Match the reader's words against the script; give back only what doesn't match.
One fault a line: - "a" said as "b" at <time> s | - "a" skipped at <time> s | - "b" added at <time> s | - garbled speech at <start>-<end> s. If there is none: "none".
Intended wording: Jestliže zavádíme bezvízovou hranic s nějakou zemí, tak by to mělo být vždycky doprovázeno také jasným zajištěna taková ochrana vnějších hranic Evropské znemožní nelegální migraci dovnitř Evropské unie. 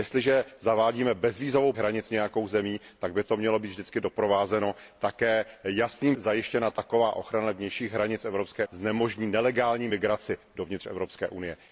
none